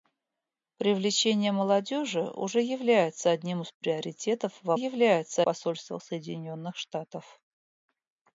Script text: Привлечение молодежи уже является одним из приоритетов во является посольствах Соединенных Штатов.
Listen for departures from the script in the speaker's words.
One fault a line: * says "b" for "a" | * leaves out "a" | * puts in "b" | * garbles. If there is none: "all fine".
all fine